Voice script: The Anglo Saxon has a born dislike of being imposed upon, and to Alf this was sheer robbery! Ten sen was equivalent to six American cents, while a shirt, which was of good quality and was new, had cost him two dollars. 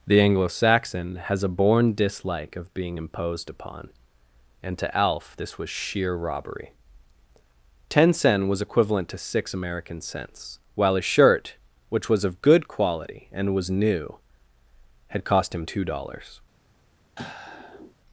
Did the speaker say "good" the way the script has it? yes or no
yes